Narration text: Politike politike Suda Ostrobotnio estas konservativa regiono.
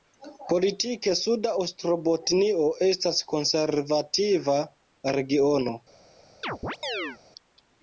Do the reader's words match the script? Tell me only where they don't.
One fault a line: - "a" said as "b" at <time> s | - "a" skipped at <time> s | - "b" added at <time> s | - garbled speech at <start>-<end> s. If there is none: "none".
- "politike" skipped at 1.1 s